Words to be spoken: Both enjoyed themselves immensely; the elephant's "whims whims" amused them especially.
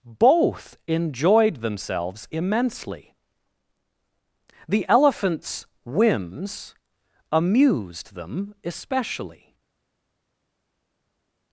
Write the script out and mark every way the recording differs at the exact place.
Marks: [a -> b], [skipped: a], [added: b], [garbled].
Both enjoyed themselves immensely; the elephant's "whims [skipped: whims"] amused them especially.